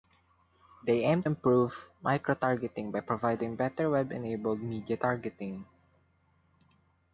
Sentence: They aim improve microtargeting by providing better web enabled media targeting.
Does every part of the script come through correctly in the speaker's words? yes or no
yes